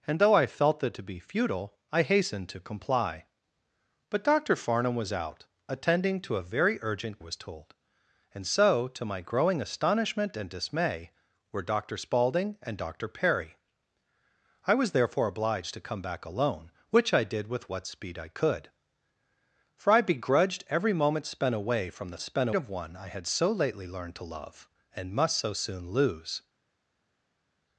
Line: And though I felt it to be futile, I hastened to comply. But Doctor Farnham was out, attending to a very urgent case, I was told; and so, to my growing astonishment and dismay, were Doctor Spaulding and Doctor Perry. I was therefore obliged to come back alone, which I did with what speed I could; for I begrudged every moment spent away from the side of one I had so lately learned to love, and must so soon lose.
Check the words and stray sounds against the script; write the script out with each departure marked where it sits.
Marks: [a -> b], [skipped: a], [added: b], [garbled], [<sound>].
And though I felt it to be futile, I hastened to comply. But Doctor Farnham was out, attending to a very urgent [skipped: case, I] was told; and so, to my growing astonishment and dismay, were Doctor Spaulding and Doctor Perry. I was therefore obliged to come back alone, which I did with what speed I could; for I begrudged every moment spent away from the [side -> spent] of one I had so lately learned to love, and must so soon lose.